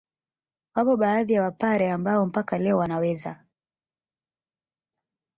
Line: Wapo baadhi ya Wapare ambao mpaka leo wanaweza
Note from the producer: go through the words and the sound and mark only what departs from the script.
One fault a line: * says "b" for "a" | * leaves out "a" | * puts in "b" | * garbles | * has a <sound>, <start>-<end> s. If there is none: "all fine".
all fine